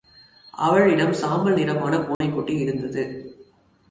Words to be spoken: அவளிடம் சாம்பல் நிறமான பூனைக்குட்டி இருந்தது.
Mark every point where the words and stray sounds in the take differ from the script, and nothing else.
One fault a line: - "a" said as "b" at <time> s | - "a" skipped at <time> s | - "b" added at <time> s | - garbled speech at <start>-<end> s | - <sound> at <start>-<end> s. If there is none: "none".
- dropout at 2.1-2.2 s